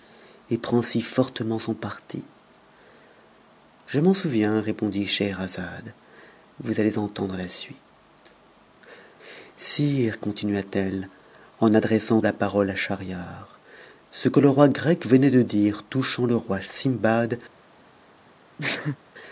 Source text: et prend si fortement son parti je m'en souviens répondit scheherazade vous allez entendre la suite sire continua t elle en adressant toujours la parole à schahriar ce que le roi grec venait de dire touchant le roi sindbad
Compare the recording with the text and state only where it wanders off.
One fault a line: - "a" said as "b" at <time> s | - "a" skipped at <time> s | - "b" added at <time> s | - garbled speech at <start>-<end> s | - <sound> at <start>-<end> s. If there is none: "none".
- "toujours" skipped at 12.2 s
- sneeze at 18.6-19.0 s